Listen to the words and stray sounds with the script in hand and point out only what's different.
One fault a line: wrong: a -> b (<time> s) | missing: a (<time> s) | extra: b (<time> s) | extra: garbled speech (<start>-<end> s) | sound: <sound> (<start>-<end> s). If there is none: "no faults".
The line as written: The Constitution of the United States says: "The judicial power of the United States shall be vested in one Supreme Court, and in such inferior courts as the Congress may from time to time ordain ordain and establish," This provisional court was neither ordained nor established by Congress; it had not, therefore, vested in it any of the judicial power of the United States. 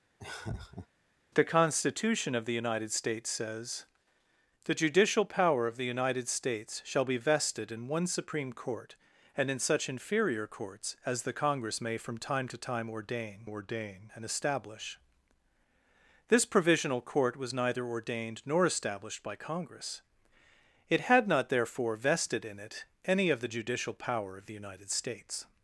sound: laugh (0.2-0.9 s)